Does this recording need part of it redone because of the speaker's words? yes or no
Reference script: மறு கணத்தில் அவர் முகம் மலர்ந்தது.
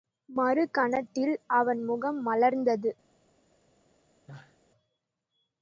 yes